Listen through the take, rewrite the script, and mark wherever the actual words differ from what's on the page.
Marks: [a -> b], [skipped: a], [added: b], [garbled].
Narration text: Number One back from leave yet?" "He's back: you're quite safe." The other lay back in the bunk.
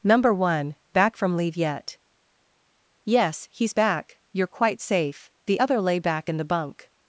Number One back from leave yet?" [added: Yes] "He's back: you're quite safe." The other lay back in the bunk.